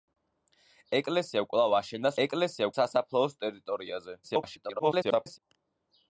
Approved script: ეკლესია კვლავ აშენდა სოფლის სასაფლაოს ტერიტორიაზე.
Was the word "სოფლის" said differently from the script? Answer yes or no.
yes